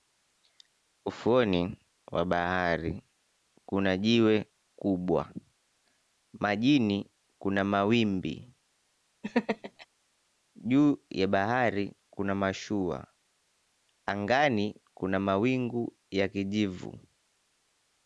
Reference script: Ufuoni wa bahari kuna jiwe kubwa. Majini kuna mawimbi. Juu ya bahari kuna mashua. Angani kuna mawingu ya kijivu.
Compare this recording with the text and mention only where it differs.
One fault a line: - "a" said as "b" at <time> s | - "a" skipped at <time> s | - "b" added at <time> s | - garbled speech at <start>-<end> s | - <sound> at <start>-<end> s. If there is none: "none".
- laugh at 9.2-9.9 s